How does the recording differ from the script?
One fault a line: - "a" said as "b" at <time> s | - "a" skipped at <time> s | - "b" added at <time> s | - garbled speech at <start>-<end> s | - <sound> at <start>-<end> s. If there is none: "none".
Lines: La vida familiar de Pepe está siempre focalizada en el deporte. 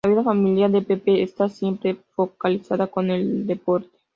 none